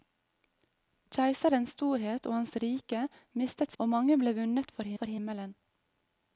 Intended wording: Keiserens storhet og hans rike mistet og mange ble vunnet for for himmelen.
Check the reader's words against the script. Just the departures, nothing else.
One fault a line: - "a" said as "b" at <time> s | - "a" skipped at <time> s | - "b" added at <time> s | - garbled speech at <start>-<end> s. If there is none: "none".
none